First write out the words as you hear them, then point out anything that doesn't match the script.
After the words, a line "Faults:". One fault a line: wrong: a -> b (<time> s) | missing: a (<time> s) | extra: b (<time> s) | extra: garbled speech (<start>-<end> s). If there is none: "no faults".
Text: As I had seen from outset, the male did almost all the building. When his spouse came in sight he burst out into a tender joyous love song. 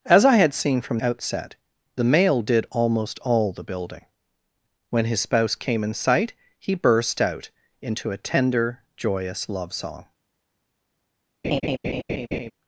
As I had seen from outset, the male did almost all the building. When his spouse came in sight he burst out into a tender joyous love song.
Faults:
no faults